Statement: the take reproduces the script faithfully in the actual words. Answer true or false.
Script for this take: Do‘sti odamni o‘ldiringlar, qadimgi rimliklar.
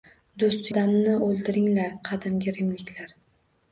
true